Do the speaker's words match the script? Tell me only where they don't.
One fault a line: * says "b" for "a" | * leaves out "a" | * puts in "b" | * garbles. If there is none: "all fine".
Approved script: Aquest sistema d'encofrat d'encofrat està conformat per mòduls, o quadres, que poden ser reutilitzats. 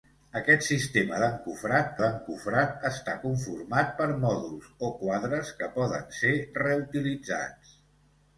all fine